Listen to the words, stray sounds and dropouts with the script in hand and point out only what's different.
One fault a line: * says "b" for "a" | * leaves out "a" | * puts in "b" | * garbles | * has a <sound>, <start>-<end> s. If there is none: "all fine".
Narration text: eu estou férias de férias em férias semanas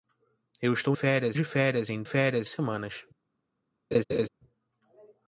* has a laugh, 3.9-4.3 s